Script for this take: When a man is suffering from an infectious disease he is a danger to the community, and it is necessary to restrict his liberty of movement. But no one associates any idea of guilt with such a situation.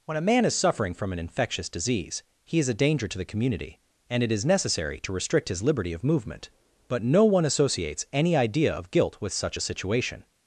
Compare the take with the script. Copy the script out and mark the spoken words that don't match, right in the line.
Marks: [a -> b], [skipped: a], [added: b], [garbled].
When a man is suffering from an infectious disease he is a danger to the community, and it is necessary to restrict his liberty of movement. But no one associates any idea of guilt with such a situation.